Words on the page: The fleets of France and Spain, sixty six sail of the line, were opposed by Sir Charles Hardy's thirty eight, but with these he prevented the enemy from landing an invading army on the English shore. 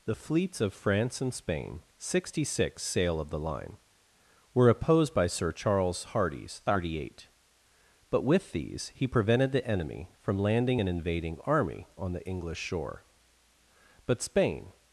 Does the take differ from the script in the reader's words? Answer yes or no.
yes